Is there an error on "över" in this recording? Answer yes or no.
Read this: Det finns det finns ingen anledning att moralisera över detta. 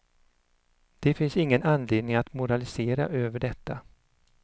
no